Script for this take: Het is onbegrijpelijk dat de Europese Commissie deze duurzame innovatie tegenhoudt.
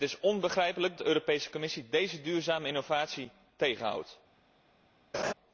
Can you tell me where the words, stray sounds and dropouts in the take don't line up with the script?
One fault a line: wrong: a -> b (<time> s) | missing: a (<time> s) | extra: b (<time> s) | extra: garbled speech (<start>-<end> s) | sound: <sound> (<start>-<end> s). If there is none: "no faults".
missing: dat (1.0 s)
sound: laugh (5.1-5.3 s)